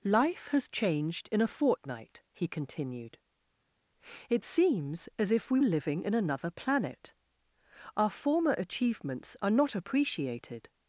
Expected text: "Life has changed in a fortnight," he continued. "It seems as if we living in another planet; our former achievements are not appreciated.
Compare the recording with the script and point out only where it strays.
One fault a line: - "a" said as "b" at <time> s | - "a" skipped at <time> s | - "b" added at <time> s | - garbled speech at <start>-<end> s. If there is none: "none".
none